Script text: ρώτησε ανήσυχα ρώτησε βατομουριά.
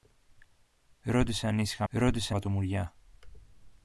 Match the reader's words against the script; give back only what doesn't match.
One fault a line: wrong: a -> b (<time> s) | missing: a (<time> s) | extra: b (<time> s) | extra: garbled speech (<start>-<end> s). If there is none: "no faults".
no faults